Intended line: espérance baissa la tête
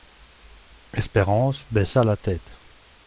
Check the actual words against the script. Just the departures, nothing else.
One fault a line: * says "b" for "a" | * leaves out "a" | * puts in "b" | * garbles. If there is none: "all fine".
all fine